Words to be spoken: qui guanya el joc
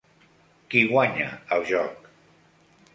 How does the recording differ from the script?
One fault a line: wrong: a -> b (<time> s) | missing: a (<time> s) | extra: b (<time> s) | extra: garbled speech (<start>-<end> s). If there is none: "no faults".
no faults